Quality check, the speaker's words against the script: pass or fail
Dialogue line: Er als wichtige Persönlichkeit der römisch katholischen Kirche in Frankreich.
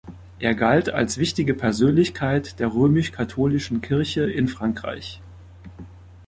fail